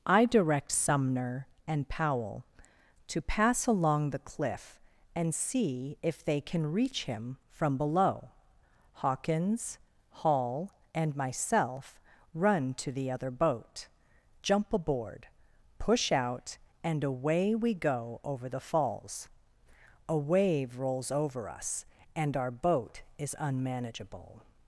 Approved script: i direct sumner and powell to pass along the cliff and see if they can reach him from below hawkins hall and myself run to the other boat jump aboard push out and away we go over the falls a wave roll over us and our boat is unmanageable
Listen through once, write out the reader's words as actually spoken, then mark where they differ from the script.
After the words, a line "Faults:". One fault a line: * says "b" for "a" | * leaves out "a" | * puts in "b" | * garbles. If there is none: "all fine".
i direct sumner and powell to pass along the cliff and see if they can reach him from below hawkins hall and myself run to the other boat jump aboard push out and away we go over the falls a wave rolls over us and our boat is unmanageable
Faults:
* says "rolls" for "roll"